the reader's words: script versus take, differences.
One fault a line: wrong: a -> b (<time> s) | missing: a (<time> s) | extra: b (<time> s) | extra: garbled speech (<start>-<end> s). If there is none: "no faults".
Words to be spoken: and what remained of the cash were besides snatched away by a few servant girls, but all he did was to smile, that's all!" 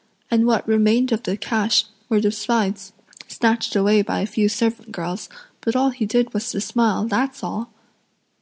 no faults